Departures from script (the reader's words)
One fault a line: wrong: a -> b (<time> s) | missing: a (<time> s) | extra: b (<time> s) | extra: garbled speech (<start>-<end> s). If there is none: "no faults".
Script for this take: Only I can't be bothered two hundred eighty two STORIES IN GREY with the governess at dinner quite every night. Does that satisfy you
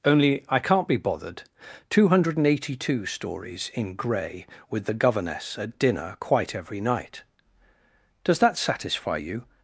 no faults